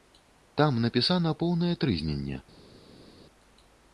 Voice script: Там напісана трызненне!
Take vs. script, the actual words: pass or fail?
fail